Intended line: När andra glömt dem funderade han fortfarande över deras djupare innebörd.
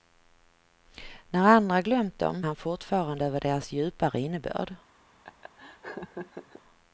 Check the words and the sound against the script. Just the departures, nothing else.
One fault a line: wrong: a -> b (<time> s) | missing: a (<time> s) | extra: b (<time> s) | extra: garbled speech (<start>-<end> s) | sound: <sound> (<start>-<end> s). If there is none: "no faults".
missing: funderade (2.4 s)
sound: laugh (5.2-6.6 s)